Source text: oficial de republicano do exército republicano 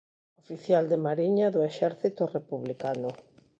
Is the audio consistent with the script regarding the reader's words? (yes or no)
no